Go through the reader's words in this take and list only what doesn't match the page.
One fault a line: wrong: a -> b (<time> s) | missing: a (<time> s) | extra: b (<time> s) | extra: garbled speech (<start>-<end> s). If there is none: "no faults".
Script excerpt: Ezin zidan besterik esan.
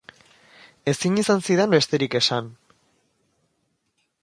extra: izan (1.2 s)